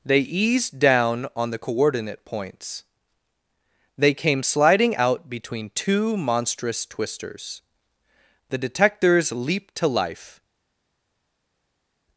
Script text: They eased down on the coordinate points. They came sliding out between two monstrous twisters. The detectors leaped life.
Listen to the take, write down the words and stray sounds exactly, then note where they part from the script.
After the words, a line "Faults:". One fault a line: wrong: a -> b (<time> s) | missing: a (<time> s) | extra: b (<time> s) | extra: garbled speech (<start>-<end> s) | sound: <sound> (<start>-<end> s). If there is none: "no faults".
They eased down on the coordinate points. They came sliding out between two monstrous twisters. The detectors leaped to life.
Faults:
extra: to (9.8 s)